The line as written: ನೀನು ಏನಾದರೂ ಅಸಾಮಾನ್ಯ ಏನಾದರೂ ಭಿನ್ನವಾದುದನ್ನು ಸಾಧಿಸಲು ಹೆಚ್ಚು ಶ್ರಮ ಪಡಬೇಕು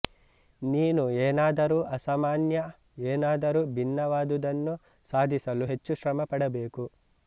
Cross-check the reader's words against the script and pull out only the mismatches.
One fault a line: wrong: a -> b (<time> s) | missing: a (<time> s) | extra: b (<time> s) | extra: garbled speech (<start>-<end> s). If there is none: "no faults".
no faults